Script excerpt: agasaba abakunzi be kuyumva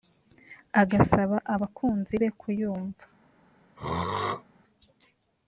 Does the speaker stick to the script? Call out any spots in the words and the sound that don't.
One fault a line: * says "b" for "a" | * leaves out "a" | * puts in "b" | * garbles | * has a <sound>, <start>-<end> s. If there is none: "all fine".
* has a throat clearing, 3.8-4.4 s